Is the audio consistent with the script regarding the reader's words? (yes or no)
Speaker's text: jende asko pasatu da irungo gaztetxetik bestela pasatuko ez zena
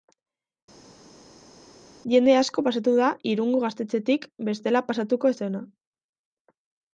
yes